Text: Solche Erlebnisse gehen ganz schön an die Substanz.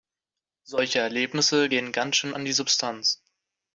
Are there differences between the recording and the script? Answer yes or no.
no